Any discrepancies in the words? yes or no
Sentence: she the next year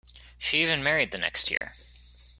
yes